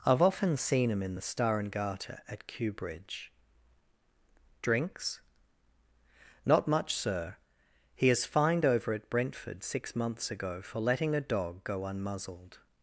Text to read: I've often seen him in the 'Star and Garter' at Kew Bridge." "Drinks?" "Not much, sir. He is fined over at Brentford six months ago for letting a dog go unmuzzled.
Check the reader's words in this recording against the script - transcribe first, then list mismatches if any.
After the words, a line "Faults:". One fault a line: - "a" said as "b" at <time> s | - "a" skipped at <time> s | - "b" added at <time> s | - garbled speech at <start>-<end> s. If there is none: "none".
I've often seen him in the 'Star and Garter' at Kew Bridge." "Drinks?" "Not much, sir. He is fined over at Brentford six months ago for letting a dog go unmuzzled.
Faults:
none